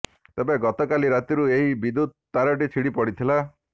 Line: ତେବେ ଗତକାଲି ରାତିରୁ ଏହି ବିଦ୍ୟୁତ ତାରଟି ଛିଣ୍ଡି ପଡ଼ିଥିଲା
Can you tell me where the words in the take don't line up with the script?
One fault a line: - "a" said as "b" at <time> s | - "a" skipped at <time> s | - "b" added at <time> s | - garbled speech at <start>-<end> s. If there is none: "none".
none